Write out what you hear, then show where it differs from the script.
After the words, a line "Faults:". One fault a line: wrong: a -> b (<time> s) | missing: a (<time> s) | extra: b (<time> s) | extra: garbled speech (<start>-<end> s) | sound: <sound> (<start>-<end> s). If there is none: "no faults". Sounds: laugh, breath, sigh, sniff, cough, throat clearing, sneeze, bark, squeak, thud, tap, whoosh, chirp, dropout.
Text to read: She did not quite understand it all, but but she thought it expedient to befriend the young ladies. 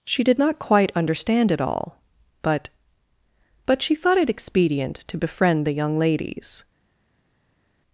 She did not quite understand it all, but but she thought it expedient to befriend the young ladies.
Faults:
no faults